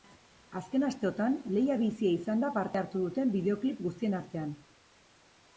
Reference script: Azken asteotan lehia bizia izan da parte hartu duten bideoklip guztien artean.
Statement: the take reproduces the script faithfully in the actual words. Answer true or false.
true